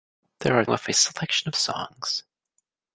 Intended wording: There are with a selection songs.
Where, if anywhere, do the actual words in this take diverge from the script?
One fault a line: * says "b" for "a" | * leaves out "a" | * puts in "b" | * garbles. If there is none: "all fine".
all fine